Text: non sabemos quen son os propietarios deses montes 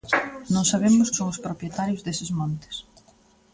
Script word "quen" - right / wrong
wrong